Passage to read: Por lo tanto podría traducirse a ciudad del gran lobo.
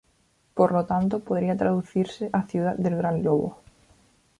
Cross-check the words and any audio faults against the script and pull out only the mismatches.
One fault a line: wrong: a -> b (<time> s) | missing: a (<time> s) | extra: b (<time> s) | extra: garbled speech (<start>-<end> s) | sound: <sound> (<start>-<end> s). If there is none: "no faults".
no faults